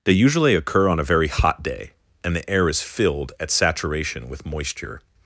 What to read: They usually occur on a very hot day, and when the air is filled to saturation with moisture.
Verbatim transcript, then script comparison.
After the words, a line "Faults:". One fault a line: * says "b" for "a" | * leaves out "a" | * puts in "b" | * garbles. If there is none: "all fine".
They usually occur on a very hot day, and the air is filled at saturation with moisture.
Faults:
* leaves out "when"
* says "at" for "to"